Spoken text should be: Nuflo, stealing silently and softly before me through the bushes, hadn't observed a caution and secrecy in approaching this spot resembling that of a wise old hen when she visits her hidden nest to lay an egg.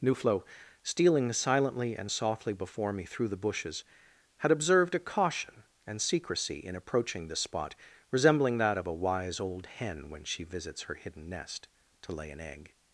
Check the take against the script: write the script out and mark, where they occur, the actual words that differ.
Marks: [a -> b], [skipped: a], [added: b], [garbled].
Nuflo, stealing silently and softly before me through the bushes, [hadn't -> had] observed a caution and secrecy in approaching this spot resembling that of a wise old hen when she visits her hidden nest to lay an egg.